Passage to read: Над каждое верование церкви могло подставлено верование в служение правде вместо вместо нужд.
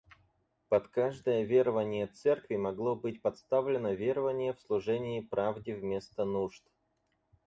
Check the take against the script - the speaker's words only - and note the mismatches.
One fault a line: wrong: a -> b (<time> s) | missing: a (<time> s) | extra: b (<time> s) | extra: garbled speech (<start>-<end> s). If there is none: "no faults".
wrong: Над -> Под (0.7 s)
extra: быть (3.0 s)
missing: вместо (6.2 s)